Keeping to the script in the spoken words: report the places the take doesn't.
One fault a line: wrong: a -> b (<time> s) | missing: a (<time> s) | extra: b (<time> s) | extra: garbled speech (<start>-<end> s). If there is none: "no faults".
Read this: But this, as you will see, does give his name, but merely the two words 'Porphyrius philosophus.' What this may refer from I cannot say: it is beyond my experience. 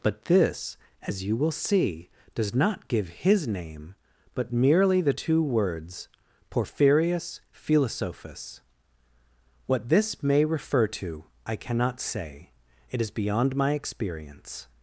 extra: not (2.5 s)
wrong: from -> to (10.9 s)